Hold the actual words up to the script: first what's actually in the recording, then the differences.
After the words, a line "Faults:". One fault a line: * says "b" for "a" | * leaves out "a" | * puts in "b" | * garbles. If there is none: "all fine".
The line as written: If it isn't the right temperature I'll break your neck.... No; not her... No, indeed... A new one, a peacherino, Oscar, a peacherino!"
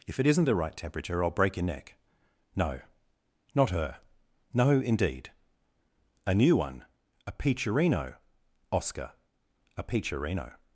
If it isn't the right temperature I'll break your neck.... No; not her... No, indeed... A new one, a peacherino, Oscar, a peacherino!"
Faults:
all fine